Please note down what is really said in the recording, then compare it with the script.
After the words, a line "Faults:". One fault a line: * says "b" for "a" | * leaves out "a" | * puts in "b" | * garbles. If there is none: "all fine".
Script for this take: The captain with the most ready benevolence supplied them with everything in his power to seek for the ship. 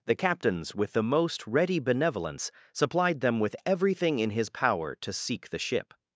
The captains with the most ready benevolence supplied them with everything in his power to seek the ship.
Faults:
* says "captains" for "captain"
* leaves out "for"